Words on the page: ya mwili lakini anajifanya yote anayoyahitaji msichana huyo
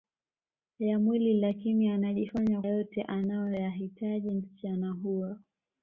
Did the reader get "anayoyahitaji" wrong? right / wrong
right